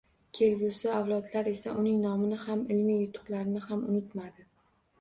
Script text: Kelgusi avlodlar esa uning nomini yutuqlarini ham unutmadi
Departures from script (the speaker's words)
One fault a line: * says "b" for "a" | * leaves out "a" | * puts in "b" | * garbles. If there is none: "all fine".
* puts in "ham ilmiy"